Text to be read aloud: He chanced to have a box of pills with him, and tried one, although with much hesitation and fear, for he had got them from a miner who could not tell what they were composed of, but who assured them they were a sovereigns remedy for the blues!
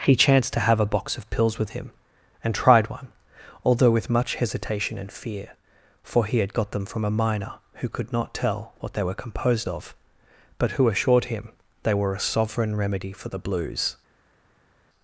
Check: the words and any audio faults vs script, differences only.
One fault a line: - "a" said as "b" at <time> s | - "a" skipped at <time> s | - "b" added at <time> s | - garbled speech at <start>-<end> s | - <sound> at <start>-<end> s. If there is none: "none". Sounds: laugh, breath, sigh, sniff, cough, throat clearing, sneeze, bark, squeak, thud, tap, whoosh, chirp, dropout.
- "them" said as "him" at 11.2 s
- "sovereigns" said as "sovereign" at 12.2 s